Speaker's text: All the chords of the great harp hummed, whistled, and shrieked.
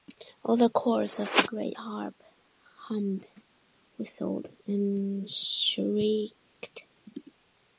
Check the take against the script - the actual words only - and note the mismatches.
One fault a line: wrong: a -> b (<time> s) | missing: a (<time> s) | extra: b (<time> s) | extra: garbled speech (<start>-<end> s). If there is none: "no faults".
no faults